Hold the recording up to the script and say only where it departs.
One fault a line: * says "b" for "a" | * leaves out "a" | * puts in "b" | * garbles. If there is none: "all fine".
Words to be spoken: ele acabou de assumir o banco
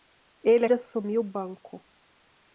* leaves out "acabou"